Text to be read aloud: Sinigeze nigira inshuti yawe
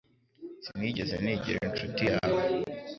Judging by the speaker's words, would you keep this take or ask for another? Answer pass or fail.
pass